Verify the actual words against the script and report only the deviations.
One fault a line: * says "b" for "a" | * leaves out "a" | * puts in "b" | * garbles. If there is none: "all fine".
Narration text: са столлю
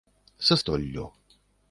all fine